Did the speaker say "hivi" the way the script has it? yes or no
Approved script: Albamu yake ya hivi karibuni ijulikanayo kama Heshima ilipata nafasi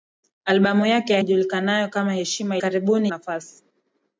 no